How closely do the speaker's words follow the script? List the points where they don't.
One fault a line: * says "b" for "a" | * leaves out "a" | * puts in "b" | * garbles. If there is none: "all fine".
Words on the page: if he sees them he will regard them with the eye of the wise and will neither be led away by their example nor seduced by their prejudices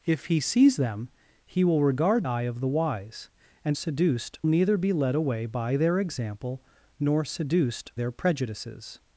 * leaves out "them with the"
* says "seduced" for "will"
* leaves out "by"